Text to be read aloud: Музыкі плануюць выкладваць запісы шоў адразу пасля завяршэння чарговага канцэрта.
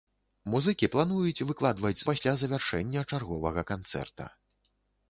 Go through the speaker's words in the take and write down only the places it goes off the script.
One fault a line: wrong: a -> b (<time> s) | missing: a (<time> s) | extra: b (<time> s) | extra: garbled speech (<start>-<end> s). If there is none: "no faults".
missing: запісы шоў адразу (2.0 s)